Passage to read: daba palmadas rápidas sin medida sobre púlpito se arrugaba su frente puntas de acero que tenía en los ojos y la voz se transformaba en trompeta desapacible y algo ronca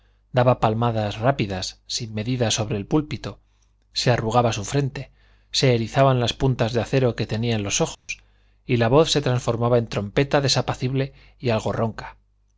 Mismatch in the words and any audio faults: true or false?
true